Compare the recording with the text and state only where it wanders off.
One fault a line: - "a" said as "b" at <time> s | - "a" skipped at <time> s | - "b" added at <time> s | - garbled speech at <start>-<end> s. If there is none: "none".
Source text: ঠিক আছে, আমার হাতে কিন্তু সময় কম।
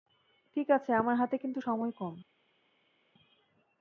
none